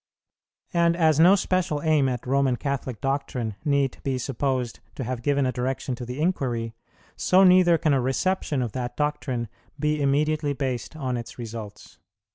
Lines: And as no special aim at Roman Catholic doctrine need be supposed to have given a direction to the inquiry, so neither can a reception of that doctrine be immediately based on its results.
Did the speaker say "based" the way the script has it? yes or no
yes